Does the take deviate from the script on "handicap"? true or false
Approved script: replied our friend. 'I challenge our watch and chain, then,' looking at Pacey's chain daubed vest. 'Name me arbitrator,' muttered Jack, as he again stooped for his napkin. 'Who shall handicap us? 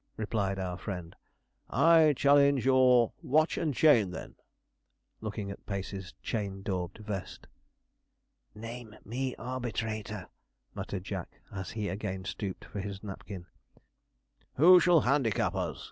false